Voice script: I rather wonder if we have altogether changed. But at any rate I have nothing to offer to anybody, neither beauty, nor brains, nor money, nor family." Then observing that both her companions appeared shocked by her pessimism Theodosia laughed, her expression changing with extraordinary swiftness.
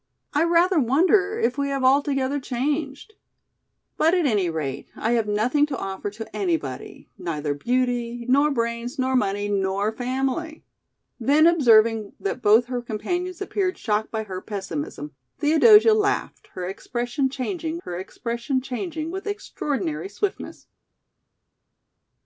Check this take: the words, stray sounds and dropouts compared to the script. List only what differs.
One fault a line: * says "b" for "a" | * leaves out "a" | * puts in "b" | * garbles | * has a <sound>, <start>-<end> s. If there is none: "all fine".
* puts in "her expression changing"